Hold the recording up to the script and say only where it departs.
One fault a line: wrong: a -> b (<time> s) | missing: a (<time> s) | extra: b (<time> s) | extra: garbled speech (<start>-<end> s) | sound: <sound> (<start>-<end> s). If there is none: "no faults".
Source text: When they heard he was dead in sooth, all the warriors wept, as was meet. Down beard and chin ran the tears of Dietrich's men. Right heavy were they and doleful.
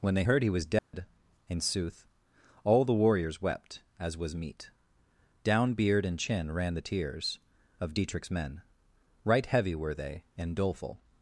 sound: dropout (0.8-0.9 s)